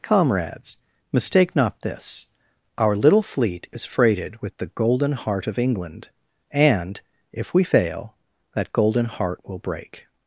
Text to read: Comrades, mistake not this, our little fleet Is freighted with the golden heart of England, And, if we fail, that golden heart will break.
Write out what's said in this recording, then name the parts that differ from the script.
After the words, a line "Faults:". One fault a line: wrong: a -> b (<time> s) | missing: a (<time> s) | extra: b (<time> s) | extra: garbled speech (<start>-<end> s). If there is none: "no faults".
Comrades, mistake not this, our little fleet Is freighted with the golden heart of England, And, if we fail, that golden heart will break.
Faults:
no faults